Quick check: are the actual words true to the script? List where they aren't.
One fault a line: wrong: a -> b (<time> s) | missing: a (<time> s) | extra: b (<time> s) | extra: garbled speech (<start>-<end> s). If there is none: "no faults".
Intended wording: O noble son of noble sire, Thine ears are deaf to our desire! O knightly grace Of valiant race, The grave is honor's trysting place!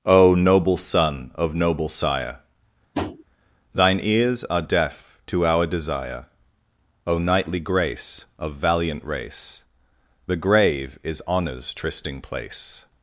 no faults